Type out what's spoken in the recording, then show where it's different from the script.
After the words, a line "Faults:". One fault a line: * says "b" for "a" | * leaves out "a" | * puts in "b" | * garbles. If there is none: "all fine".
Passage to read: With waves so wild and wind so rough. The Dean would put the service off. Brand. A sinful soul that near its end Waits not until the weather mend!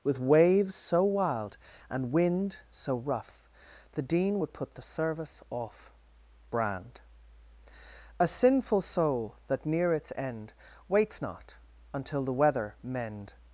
With waves so wild and wind so rough. The Dean would put the service off. Brand. A sinful soul that near its end Waits not until the weather mend!
Faults:
all fine